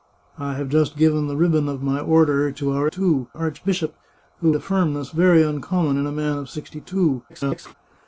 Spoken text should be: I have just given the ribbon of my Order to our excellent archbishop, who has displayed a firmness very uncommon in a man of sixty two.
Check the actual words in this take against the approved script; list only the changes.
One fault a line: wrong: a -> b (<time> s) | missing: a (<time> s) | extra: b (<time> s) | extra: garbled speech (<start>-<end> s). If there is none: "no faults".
wrong: excellent -> two (2.9 s)
missing: has displayed (4.5 s)
extra: garbled speech (7.3-7.7 s)